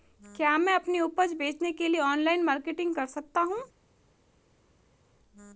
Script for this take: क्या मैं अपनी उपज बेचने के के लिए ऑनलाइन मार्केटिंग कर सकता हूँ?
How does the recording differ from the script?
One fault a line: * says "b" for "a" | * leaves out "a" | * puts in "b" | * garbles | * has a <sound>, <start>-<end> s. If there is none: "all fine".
* leaves out "के"